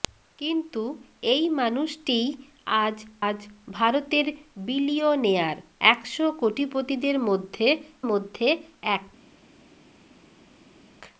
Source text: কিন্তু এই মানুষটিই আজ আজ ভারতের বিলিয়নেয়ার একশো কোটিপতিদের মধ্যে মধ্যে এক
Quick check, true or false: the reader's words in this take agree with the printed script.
true